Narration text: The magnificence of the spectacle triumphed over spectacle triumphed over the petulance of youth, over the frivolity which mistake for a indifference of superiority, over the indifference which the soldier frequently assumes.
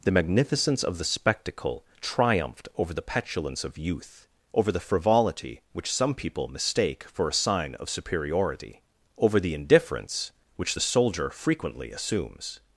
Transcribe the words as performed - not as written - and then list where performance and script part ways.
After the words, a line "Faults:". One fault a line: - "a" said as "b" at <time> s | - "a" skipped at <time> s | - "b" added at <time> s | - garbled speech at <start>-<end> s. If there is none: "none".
The magnificence of the spectacle triumphed over the petulance of youth, over the frivolity which some people mistake for a sign of superiority, over the indifference which the soldier frequently assumes.
Faults:
- "spectacle triumphed over" skipped at 2.9 s
- "some people" added at 5.9 s
- "indifference" said as "sign" at 7.3 s